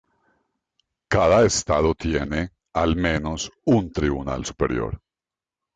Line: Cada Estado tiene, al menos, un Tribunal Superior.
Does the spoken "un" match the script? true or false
true